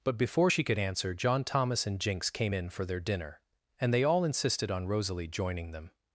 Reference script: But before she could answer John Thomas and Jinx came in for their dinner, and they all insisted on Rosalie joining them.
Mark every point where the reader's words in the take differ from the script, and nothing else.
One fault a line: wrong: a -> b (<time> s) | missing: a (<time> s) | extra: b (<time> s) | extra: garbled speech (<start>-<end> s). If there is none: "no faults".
no faults